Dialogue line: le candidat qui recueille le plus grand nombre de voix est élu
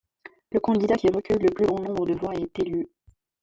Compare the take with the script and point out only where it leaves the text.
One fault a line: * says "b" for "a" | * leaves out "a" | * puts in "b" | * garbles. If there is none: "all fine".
all fine